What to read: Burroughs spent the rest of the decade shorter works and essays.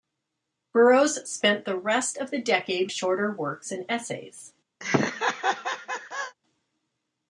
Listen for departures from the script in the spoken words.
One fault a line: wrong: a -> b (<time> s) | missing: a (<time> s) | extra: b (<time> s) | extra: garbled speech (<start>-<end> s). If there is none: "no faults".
no faults